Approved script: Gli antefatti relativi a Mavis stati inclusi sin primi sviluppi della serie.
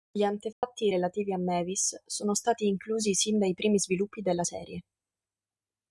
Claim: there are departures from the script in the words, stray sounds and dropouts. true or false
true